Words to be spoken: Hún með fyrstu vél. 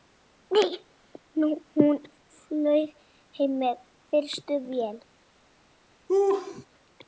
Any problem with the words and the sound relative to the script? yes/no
yes